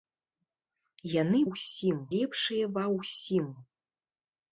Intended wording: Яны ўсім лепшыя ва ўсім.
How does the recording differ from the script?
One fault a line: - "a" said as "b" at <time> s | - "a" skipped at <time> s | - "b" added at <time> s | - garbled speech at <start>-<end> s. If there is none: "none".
none